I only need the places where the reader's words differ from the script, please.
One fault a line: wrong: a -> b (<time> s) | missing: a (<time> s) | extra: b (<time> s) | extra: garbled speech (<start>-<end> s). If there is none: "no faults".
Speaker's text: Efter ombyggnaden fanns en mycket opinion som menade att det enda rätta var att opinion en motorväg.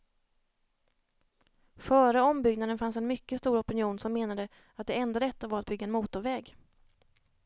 wrong: Efter -> Före (1.8 s)
extra: stor (3.4 s)
wrong: opinion -> bygga (5.7 s)